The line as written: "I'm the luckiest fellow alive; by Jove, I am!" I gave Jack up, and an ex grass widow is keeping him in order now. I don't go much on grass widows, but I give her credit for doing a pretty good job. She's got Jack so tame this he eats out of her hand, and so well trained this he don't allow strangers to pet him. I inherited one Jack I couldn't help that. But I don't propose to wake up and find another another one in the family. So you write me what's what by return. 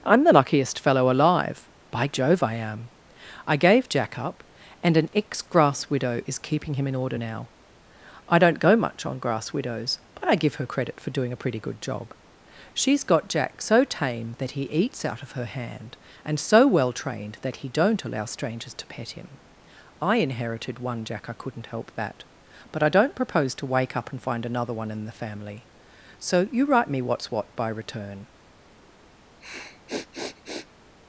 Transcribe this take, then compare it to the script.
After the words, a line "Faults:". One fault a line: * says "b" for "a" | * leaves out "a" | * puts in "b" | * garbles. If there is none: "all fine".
"I'm the luckiest fellow alive; by Jove, I am!" I gave Jack up, and an ex grass widow is keeping him in order now. I don't go much on grass widows, but I give her credit for doing a pretty good job. She's got Jack so tame that he eats out of her hand, and so well trained that he don't allow strangers to pet him. I inherited one Jack I couldn't help that. But I don't propose to wake up and find another one in the family. So you write me what's what by return.
Faults:
* says "that" for "this"
* says "that" for "this"
* leaves out "another"